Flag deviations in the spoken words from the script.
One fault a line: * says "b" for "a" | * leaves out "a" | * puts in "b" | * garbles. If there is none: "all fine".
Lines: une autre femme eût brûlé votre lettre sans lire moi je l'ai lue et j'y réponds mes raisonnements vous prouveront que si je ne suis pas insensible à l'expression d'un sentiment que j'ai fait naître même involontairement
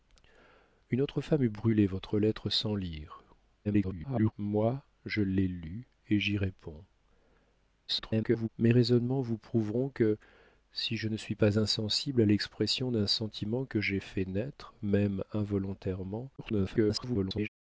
* garbles
* garbles
* garbles